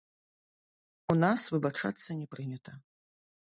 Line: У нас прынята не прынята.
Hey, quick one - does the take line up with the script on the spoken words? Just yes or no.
no